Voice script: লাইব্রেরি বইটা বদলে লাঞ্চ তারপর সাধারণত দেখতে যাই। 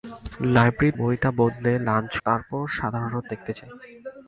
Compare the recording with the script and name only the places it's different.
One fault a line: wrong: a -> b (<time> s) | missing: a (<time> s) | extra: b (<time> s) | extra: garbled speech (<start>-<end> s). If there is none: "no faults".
no faults